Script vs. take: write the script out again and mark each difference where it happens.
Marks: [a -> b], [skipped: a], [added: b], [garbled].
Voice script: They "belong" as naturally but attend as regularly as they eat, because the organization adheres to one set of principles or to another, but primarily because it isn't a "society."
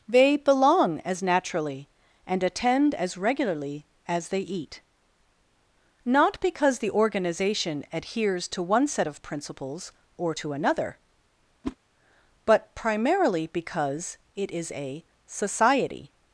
They "belong" as naturally [but -> and] attend as regularly as they eat, [added: not] because the organization adheres to one set of principles or to another, but primarily because it [isn't -> is] a "society."